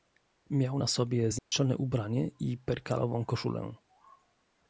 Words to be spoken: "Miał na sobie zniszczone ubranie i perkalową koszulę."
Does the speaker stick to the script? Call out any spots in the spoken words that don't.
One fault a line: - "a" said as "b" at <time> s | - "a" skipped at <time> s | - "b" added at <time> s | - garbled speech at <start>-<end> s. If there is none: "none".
none